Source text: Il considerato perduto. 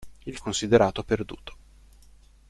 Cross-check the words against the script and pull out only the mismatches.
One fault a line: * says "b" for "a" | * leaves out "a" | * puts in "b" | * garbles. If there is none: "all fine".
all fine